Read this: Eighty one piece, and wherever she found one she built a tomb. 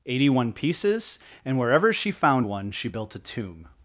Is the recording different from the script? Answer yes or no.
yes